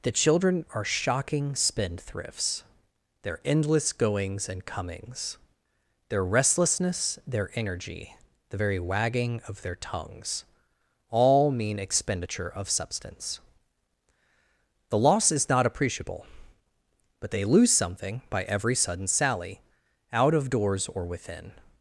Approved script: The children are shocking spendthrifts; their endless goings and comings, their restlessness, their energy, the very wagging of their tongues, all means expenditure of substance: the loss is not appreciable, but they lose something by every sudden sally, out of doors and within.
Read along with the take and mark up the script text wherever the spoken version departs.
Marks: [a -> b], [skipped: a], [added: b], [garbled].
The children are shocking spendthrifts; their endless goings and comings, their restlessness, their energy, the very wagging of their tongues, all [means -> mean] expenditure of substance: the loss is not appreciable, but they lose something by every sudden sally, out of doors [and -> or] within.